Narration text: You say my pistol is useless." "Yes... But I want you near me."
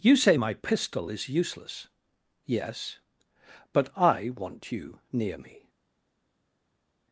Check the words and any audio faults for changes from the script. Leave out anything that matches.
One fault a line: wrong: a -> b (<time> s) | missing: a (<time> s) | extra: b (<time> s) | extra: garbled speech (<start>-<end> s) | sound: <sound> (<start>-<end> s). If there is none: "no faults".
no faults